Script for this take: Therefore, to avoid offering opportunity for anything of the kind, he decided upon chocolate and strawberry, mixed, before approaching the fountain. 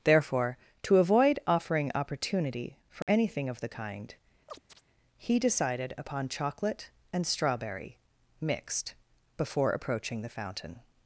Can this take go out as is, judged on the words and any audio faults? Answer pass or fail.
fail